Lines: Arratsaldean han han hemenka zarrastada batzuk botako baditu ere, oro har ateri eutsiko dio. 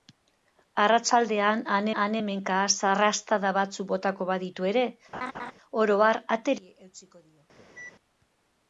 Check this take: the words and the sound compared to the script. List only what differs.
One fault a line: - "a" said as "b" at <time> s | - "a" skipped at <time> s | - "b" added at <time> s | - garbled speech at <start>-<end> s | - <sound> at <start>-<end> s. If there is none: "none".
- laugh at 5.1-5.5 s
- cough at 7.6-8.0 s